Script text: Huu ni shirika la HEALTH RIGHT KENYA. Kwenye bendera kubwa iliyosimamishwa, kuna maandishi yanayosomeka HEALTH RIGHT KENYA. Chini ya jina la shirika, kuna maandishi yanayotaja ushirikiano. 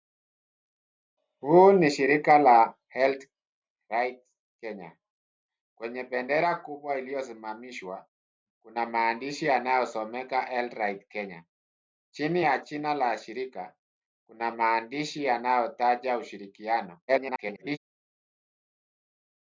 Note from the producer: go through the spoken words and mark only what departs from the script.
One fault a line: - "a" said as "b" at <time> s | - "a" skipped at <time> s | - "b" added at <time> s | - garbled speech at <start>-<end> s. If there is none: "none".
- garbled speech at 17.1-17.8 s